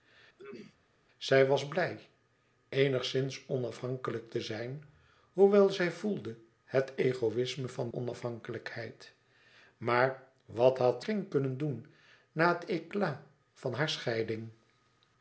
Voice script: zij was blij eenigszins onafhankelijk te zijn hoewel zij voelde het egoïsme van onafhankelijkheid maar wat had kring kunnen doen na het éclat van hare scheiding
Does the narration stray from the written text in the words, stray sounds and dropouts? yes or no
yes